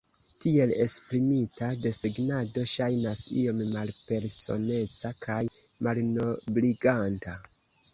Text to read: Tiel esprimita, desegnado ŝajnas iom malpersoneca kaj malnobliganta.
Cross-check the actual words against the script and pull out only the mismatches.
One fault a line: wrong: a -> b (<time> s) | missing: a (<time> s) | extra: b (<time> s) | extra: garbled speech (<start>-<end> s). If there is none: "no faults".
no faults